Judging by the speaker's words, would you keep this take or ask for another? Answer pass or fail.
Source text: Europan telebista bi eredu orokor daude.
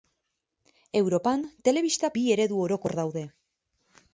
pass